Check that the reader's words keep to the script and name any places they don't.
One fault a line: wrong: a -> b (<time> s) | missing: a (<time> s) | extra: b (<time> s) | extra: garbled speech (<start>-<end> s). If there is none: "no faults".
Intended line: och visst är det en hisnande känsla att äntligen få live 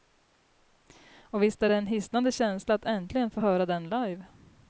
extra: höra den (3.4 s)